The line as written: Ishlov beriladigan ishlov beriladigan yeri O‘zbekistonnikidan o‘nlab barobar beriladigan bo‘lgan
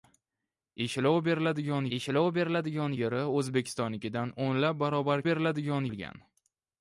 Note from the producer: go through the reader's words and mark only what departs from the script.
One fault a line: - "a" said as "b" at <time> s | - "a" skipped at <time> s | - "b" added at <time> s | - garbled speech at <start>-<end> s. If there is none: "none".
none